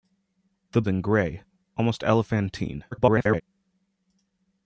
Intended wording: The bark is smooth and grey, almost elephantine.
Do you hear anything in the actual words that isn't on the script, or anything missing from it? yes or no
yes